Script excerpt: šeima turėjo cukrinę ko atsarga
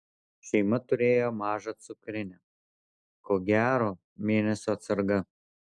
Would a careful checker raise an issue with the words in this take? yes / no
yes